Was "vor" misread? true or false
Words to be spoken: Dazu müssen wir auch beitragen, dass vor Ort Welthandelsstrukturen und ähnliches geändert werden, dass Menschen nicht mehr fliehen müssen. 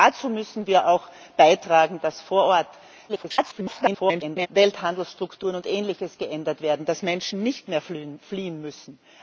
false